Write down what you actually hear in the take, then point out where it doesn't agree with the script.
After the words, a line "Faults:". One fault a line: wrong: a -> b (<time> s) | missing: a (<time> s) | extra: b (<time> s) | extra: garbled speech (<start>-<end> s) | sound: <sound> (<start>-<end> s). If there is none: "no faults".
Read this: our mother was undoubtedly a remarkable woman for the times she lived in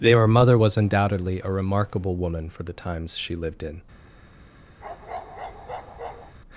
their mother was undoubtedly a remarkable woman for the times she lived in
Faults:
wrong: our -> their (0.0 s)
sound: bark (4.8-6.4 s)